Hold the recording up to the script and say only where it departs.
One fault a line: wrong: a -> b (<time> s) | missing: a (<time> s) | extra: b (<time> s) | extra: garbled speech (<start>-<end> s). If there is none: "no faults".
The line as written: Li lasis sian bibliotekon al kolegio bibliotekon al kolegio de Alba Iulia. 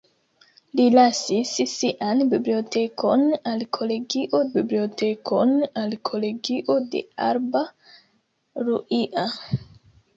no faults